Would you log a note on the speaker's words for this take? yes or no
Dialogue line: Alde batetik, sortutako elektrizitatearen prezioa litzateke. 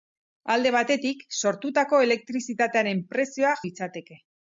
no